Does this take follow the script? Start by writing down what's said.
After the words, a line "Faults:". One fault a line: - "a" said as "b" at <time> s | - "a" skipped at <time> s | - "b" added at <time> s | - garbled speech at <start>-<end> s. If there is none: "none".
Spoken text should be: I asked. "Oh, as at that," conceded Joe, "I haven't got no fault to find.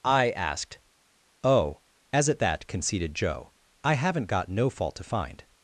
I asked. "Oh, as at that," conceded Joe, "I haven't got no fault to find.
Faults:
none